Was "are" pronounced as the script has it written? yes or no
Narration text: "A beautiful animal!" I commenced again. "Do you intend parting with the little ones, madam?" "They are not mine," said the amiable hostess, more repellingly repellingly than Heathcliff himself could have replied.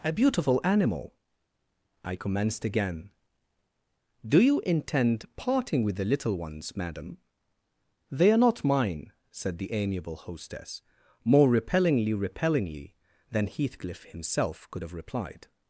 yes